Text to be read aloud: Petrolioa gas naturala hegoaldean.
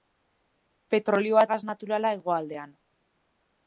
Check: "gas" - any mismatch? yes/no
no